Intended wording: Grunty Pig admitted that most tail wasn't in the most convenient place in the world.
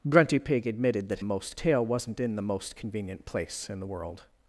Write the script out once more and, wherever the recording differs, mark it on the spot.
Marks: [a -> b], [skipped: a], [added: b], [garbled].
Grunty Pig admitted that most tail wasn't in the most convenient place in the world.